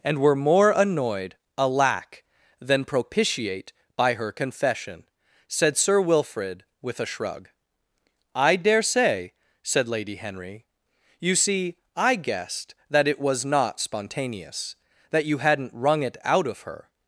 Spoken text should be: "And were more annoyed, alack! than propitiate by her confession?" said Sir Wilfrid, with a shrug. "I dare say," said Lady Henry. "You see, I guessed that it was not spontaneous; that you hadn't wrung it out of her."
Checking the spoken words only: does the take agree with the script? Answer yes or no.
yes